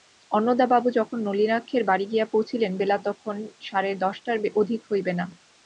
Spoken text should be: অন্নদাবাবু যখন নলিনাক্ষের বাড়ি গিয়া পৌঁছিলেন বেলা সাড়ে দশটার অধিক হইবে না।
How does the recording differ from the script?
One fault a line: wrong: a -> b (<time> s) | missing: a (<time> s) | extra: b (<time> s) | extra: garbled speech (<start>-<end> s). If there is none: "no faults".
extra: তখন (3.1 s)